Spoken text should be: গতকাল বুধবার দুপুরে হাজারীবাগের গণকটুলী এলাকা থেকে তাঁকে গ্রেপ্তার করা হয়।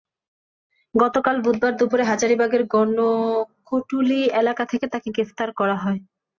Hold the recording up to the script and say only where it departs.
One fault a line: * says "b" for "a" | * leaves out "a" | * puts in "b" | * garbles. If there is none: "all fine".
all fine